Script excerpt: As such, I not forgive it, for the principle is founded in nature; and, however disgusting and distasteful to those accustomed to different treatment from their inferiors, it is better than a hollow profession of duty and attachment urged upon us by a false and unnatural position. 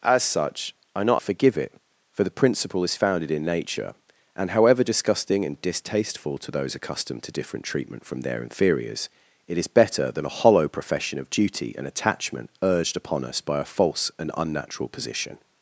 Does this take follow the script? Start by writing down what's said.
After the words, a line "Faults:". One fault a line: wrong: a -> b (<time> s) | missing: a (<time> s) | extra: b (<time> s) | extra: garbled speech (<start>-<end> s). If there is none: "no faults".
As such, I not forgive it, for the principle is founded in nature; and, however disgusting and distasteful to those accustomed to different treatment from their inferiors, it is better than a hollow profession of duty and attachment urged upon us by a false and unnatural position.
Faults:
no faults